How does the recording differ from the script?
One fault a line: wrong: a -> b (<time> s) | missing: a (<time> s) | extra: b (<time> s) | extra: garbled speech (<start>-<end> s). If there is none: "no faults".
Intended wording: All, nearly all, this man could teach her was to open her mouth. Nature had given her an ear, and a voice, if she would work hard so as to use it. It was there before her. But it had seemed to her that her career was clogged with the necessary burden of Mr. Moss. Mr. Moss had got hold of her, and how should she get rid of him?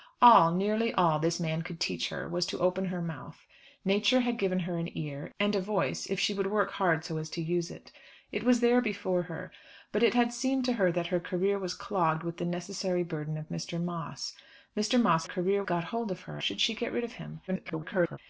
wrong: had -> career (15.2 s)
missing: and how (16.4 s)
extra: garbled speech (17.5-18.2 s)